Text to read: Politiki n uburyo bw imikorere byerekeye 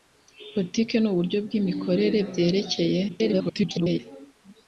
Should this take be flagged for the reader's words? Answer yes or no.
yes